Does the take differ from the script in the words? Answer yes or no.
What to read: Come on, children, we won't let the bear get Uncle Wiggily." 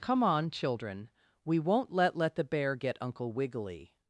yes